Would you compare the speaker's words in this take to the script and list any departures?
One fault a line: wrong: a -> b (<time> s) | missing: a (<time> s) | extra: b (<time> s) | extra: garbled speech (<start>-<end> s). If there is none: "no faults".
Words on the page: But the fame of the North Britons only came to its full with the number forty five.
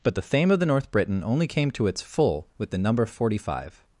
wrong: Britons -> Briton (0.9 s)